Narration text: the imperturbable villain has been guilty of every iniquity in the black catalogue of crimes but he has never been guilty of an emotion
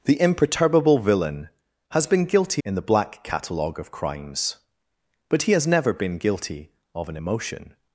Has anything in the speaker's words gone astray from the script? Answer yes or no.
yes